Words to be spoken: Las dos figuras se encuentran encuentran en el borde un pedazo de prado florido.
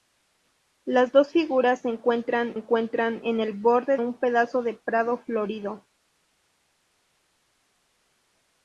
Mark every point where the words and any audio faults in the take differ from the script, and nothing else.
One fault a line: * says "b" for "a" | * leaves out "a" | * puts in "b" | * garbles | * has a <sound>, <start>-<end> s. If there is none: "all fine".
all fine